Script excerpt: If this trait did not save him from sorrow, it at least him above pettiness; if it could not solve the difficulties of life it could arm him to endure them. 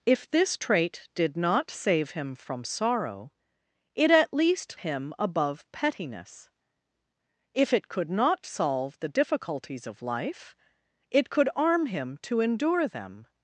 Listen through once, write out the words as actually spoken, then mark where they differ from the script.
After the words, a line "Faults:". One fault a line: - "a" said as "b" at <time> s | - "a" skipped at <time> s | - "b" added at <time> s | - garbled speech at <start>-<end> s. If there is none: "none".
If this trait did not save him from sorrow, it at least him above pettiness; if it could not solve the difficulties of life it could arm him to endure them.
Faults:
none